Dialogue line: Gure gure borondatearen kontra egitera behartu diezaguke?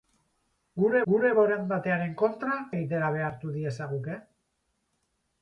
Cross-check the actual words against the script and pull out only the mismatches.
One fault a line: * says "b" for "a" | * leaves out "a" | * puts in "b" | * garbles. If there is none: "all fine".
all fine